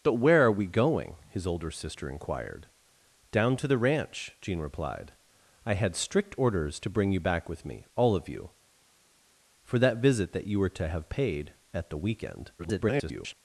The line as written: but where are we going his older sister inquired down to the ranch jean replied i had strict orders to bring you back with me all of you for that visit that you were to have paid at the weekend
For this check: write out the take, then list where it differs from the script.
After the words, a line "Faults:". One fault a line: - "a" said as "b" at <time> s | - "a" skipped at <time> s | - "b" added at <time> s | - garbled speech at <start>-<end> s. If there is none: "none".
but where are we going his older sister inquired down to the ranch jean replied i had strict orders to bring you back with me all of you for that visit that you were to have paid at the weekend [garbled]
Faults:
- garbled speech at 12.6-13.3 s